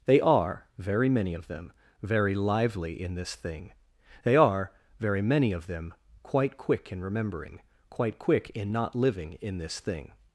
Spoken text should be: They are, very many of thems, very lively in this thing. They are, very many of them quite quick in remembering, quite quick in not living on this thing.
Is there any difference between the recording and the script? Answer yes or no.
yes